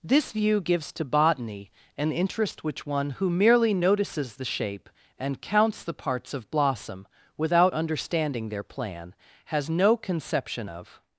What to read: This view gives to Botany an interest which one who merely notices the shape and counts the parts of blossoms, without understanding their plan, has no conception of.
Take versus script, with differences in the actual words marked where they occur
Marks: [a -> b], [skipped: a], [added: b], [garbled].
This view gives to Botany an interest which one who merely notices the shape and counts the parts of [blossoms, -> blossom] without understanding their plan, has no conception of.